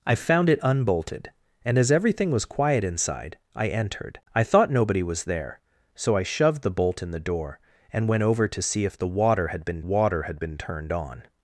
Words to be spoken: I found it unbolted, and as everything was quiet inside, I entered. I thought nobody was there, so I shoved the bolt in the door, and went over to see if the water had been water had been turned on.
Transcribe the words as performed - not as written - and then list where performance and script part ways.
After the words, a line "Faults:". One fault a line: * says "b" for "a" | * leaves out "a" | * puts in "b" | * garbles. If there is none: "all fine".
I found it unbolted, and as everything was quiet inside, I entered. I thought nobody was there, so I shoved the bolt in the door, and went over to see if the water had been water had been turned on.
Faults:
all fine